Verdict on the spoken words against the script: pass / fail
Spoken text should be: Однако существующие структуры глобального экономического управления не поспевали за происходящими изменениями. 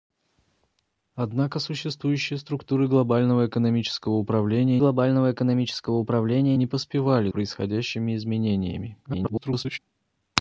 fail